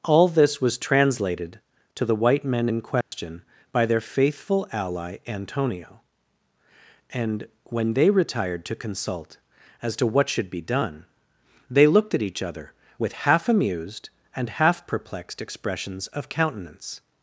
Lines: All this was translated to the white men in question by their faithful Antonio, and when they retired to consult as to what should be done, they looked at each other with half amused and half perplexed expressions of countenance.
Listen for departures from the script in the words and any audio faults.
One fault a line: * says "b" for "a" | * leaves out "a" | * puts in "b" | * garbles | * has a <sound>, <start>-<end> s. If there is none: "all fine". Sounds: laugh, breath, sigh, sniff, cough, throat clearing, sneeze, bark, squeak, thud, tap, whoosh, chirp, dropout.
* has a dropout, 3.0-3.1 s
* puts in "ally"